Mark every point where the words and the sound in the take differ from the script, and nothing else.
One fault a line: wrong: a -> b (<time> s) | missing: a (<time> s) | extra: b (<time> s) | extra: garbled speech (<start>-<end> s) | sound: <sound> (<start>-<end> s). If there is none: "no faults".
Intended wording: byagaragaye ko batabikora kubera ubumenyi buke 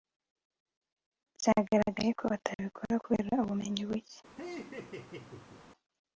sound: laugh (4.4-5.6 s)